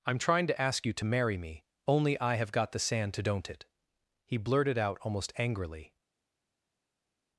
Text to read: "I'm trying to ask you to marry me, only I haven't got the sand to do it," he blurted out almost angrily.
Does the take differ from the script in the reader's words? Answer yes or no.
yes